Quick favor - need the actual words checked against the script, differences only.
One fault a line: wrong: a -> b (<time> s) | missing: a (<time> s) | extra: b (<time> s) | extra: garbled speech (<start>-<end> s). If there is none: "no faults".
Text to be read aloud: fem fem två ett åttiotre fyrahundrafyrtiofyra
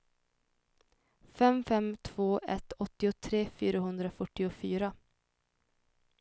no faults